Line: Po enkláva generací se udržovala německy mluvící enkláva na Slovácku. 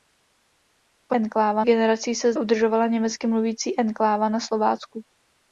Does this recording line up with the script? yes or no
yes